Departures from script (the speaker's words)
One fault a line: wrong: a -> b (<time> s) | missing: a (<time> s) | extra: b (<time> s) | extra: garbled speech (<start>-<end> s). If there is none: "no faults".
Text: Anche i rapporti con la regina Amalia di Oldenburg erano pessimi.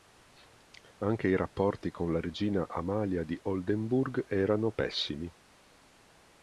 no faults